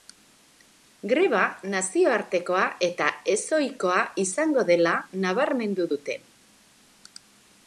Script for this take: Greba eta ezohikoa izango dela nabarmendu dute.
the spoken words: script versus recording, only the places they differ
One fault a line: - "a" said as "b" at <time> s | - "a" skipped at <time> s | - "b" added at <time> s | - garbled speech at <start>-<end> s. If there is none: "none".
- "nazioartekoa" added at 1.7 s